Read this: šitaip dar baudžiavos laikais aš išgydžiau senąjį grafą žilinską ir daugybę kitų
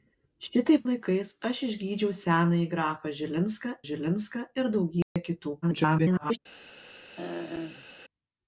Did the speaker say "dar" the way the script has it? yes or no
no